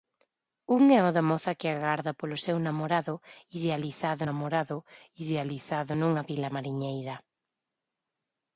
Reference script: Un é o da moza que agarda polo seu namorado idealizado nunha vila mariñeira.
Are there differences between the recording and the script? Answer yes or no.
yes